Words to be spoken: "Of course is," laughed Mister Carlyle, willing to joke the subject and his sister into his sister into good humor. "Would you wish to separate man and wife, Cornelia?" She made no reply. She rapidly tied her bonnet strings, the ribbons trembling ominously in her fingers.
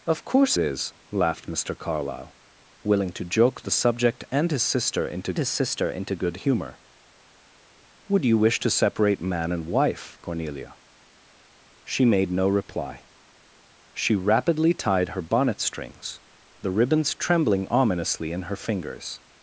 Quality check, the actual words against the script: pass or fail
pass